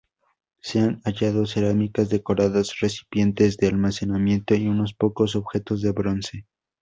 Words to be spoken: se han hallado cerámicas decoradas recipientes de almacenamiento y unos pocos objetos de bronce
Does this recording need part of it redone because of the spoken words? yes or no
no